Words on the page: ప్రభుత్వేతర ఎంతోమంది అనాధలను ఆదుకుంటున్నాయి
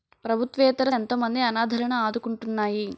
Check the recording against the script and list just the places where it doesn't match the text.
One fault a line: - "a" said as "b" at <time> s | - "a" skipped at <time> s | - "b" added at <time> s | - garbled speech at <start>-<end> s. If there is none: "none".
none